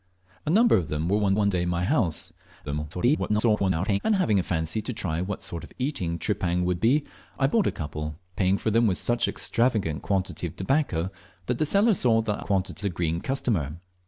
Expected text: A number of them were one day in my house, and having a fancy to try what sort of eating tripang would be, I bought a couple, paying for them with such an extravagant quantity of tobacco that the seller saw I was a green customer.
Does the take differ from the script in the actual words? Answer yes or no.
yes